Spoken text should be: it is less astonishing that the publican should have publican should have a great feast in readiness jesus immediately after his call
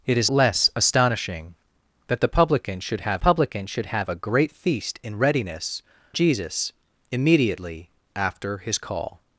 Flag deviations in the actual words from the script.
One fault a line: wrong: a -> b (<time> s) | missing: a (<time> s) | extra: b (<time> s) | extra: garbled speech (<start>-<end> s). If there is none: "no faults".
no faults